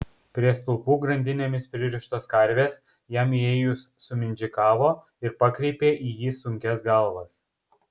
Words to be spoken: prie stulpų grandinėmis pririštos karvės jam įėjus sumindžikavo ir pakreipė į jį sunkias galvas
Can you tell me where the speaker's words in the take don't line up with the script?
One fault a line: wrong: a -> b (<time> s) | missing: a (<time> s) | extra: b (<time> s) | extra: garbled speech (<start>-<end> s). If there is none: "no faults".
no faults